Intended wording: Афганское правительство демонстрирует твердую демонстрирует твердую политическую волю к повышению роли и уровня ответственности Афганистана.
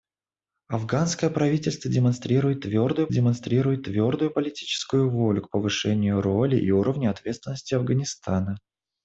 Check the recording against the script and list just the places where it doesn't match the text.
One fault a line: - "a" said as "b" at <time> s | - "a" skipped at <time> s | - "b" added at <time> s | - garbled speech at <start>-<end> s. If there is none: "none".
none